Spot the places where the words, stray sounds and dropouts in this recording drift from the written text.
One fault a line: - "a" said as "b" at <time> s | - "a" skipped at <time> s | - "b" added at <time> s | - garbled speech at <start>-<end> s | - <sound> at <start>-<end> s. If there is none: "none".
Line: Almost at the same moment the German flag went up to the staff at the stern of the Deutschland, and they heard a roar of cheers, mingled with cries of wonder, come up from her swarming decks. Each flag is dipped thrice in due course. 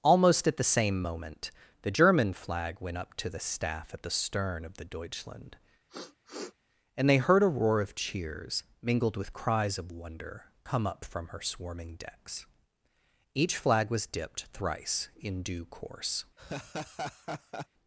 - sniff at 5.9-6.5 s
- "is" said as "was" at 13.9 s
- laugh at 16.4-17.7 s